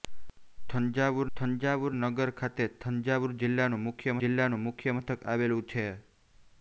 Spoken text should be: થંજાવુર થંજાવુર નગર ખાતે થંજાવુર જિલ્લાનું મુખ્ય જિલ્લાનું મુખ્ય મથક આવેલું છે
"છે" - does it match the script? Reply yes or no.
yes